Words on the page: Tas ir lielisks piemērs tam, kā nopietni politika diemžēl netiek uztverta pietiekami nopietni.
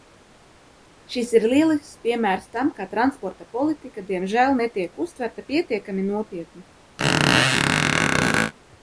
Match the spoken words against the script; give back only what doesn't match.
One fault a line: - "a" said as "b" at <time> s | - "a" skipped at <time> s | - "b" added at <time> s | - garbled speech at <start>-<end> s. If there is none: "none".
- "Tas" said as "Šis" at 1.1 s
- "nopietni" said as "transporta" at 2.9 s